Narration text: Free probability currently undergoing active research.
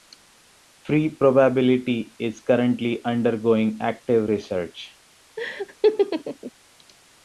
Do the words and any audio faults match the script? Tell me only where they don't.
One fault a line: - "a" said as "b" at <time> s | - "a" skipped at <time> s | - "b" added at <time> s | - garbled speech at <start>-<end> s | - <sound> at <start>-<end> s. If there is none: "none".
- "is" added at 2.2 s
- laugh at 5.4-6.5 s